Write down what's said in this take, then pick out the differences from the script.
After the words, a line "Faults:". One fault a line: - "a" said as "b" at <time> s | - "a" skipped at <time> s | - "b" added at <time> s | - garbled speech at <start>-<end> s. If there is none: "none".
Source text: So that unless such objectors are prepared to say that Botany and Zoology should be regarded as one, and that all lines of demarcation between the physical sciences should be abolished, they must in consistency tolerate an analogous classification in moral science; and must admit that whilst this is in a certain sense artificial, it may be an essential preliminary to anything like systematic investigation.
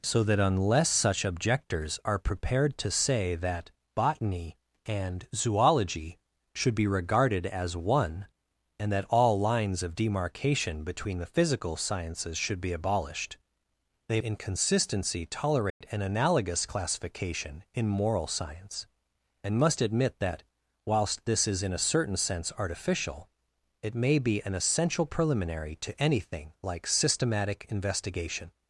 So that unless such objectors are prepared to say that Botany and Zoology should be regarded as one, and that all lines of demarcation between the physical sciences should be abolished, they in consistency tolerate an analogous classification in moral science; and must admit that whilst this is in a certain sense artificial, it may be an essential preliminary to anything like systematic investigation.
Faults:
- "must" skipped at 14.2 s